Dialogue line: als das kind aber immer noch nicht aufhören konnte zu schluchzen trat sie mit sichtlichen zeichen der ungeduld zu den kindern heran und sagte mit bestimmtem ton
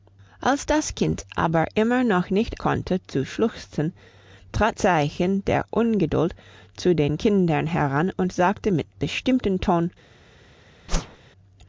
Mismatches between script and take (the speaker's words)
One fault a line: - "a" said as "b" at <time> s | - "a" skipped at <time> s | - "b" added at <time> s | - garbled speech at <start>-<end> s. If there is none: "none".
- "aufhören" skipped at 2.6 s
- "sie mit sichtlichen" skipped at 4.7 s